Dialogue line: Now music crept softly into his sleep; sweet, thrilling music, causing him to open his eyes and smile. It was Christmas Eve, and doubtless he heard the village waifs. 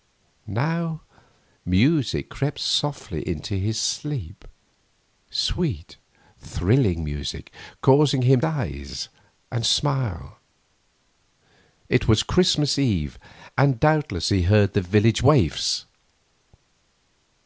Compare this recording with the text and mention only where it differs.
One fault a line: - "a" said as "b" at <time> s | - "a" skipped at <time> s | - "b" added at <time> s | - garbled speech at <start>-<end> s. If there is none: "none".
- "to open his" skipped at 8.4 s